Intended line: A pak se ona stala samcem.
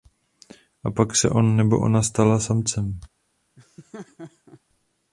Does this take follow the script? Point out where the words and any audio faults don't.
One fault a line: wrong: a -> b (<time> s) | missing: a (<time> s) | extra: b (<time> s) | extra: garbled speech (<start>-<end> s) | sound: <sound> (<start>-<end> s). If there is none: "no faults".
extra: on nebo (1.3 s)
sound: laugh (3.6-4.6 s)